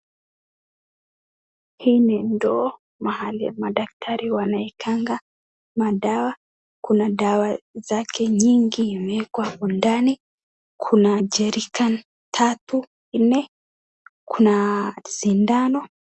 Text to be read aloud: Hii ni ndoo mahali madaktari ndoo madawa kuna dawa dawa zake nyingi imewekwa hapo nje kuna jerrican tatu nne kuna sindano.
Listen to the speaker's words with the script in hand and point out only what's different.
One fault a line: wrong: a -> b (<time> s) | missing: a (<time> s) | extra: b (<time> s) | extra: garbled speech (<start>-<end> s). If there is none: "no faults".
wrong: ndoo -> wanaekanga (4.3 s)
missing: dawa (7.6 s)
wrong: nje -> ndani (9.7 s)